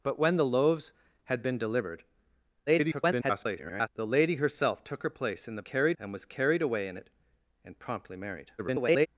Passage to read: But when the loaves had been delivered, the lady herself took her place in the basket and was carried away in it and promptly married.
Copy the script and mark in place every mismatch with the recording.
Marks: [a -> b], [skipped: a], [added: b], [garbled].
But when the loaves had been delivered, [garbled] the lady herself took her place in the [basket -> carried] and was carried away in it and promptly married. [garbled]